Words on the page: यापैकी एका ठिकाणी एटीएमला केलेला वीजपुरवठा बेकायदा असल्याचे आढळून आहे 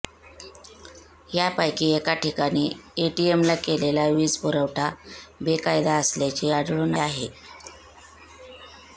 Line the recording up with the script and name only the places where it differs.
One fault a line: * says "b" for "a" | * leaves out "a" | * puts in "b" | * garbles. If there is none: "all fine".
all fine